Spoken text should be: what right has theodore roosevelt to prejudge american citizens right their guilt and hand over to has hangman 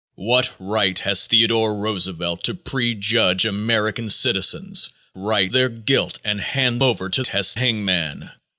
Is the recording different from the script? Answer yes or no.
no